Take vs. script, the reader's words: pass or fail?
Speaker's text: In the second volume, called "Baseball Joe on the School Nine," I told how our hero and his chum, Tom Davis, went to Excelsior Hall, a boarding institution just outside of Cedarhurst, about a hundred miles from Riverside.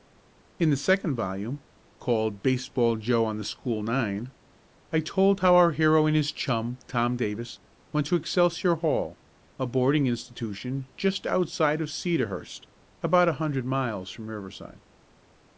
pass